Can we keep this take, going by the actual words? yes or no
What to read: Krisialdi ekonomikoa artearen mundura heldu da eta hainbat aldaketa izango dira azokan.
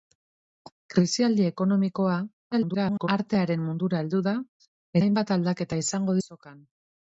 no